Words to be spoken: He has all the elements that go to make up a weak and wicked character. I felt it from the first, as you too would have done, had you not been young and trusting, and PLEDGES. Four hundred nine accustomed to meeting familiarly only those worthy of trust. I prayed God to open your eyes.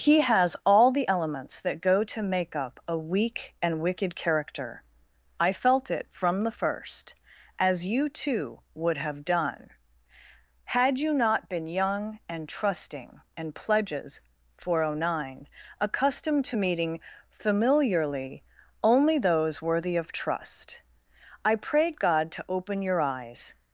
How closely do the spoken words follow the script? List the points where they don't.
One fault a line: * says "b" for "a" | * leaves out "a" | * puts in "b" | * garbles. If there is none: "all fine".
all fine